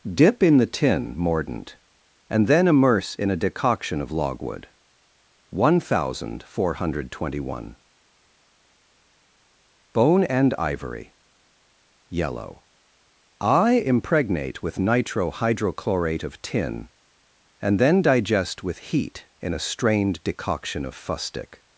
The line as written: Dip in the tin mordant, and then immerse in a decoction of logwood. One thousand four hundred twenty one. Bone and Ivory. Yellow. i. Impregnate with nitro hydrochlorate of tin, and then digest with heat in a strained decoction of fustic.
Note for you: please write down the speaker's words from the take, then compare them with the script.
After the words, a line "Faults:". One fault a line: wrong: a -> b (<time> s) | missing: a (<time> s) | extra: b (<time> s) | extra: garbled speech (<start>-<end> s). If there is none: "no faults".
Dip in the tin mordant, and then immerse in a decoction of logwood. One thousand four hundred twenty one. Bone and Ivory. Yellow. i. Impregnate with nitro hydrochlorate of tin, and then digest with heat in a strained decoction of fustic.
Faults:
no faults